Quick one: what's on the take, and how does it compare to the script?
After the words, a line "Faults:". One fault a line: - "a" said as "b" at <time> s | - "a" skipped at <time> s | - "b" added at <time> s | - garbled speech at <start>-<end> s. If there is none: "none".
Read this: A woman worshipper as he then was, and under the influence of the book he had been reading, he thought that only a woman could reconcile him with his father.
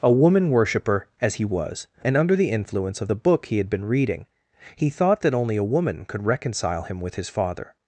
A woman worshipper as he was, and under the influence of the book he had been reading, he thought that only a woman could reconcile him with his father.
Faults:
- "then" skipped at 1.4 s